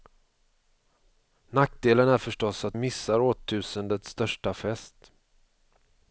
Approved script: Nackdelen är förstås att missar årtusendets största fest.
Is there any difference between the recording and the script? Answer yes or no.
no